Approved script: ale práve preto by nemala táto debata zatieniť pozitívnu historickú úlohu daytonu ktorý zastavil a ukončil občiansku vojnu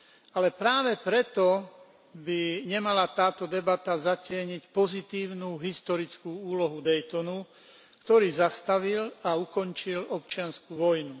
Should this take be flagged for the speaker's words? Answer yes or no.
no